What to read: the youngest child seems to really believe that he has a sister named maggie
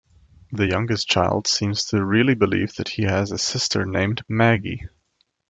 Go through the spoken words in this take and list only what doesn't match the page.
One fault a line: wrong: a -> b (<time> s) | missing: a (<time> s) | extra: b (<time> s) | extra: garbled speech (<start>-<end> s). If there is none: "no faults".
no faults